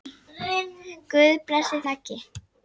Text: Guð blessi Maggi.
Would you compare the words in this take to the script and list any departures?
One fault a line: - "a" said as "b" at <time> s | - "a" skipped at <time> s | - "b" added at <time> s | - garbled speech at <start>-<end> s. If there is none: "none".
none